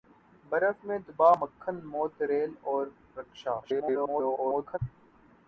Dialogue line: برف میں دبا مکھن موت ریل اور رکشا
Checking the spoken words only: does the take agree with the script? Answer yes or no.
no